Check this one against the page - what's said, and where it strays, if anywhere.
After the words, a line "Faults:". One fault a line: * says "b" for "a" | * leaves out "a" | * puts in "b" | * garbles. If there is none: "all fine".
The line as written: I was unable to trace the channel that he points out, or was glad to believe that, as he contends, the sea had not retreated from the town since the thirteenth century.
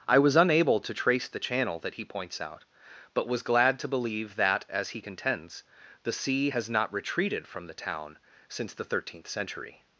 I was unable to trace the channel that he points out, but was glad to believe that, as he contends, the sea has not retreated from the town since the thirteenth century.
Faults:
* says "but" for "or"
* says "has" for "had"